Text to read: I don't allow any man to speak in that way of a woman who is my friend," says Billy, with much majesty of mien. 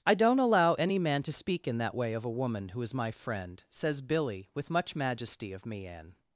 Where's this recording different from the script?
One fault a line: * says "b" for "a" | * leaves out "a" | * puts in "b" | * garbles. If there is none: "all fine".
all fine